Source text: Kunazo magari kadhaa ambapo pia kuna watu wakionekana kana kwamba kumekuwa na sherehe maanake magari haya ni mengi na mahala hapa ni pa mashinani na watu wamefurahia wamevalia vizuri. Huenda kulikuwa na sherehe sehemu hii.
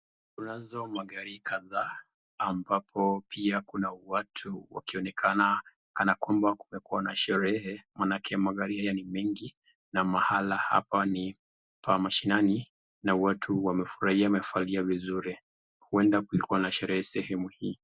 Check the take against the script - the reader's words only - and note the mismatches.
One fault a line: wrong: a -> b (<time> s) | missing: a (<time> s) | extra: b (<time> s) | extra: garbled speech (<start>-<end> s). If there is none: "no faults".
no faults